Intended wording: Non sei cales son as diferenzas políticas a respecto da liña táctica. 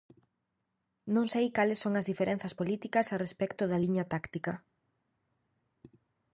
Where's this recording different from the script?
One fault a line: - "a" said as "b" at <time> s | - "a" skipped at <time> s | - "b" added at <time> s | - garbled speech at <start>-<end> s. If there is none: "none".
none